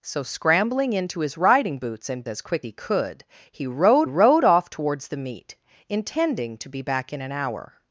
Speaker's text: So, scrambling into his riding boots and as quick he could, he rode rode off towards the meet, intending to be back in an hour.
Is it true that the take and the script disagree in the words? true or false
false